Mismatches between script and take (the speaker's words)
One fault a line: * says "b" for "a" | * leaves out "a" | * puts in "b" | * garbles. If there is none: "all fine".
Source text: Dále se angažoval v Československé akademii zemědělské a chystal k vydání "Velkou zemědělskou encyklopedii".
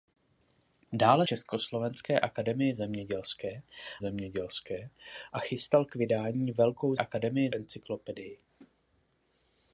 * leaves out "se angažoval v"
* puts in "zemědělské"
* says "akademii" for "zemědělskou"